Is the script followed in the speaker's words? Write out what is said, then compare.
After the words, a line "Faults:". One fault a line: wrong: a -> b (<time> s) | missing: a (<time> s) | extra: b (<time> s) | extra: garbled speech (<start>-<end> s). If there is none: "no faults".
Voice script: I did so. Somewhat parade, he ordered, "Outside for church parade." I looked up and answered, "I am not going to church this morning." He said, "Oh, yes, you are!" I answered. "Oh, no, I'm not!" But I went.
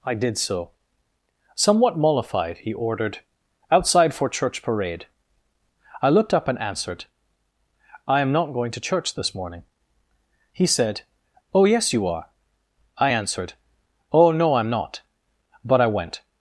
I did so. Somewhat mollified, he ordered, "Outside for church parade." I looked up and answered, "I am not going to church this morning." He said, "Oh, yes, you are!" I answered. "Oh, no, I'm not!" But I went.
Faults:
wrong: parade -> mollified (2.0 s)